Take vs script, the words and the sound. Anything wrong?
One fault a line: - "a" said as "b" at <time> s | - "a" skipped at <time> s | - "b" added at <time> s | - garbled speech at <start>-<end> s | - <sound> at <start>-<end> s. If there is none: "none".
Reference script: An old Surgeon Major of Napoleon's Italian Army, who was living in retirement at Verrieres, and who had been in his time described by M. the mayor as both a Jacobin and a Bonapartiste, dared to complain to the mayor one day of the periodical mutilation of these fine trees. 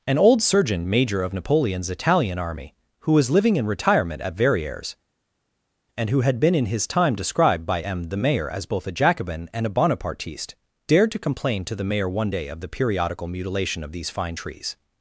none